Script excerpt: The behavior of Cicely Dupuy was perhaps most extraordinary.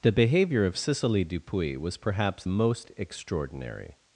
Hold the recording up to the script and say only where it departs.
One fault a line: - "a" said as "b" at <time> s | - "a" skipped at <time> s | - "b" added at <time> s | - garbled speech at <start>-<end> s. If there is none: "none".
none